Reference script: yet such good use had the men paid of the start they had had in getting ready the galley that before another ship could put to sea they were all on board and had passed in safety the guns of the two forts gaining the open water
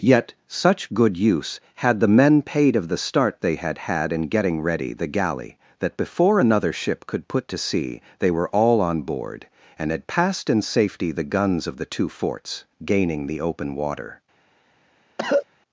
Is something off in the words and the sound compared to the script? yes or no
yes